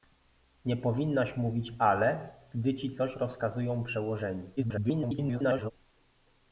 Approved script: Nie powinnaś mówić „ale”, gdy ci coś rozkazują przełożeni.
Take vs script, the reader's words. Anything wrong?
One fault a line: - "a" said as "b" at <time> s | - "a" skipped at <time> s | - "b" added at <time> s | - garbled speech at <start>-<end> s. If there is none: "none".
- garbled speech at 4.6-5.7 s